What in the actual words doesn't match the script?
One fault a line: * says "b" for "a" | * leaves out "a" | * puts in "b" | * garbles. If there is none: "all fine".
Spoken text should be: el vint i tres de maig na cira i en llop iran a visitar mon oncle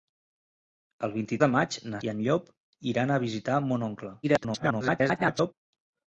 * leaves out "tres"
* leaves out "cira"
* garbles